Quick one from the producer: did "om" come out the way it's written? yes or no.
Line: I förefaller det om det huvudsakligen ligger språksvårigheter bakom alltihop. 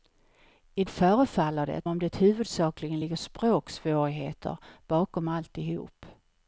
yes